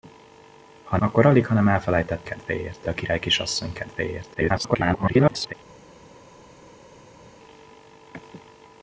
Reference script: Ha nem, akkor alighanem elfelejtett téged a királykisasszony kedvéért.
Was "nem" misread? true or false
true